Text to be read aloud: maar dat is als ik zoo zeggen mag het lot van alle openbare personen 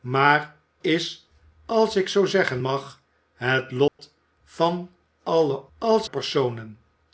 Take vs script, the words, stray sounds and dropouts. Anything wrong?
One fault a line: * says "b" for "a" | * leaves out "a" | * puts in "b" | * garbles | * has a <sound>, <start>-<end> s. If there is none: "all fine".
* leaves out "dat"
* has a dropout, 3.9-4.0 s
* says "als" for "openbare"